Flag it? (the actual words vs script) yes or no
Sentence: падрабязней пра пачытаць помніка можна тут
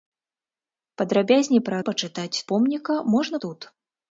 no